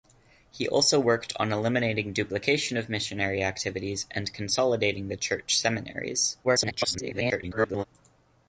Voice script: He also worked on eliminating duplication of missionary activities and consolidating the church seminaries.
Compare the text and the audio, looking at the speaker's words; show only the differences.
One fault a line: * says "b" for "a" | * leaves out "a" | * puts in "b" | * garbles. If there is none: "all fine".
* garbles